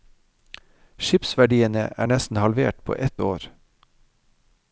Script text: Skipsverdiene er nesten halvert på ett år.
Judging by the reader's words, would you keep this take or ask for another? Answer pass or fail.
pass